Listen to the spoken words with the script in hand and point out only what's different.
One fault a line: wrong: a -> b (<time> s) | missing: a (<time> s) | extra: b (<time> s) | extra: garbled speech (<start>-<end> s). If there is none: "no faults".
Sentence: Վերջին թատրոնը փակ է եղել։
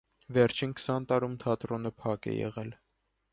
extra: քսան տարում (0.8 s)